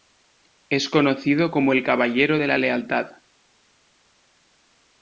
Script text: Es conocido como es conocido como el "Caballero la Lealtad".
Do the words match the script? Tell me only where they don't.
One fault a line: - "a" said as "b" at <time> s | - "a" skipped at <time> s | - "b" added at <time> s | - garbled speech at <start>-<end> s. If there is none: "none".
- "es conocido como" skipped at 1.7 s
- "de" added at 2.4 s